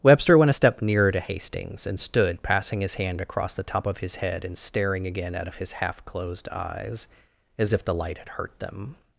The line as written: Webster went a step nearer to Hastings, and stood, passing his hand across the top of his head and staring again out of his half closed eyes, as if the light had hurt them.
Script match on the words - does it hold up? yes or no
yes